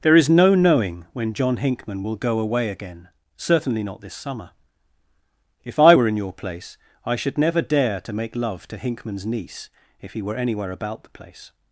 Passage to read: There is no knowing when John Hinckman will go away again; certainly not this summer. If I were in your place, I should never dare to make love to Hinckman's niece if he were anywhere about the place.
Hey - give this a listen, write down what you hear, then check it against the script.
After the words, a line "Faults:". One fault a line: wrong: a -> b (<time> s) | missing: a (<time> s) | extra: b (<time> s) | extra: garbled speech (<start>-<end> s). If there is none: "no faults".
There is no knowing when John Hinckman will go away again; certainly not this summer. If I were in your place, I should never dare to make love to Hinckman's niece if he were anywhere about the place.
Faults:
no faults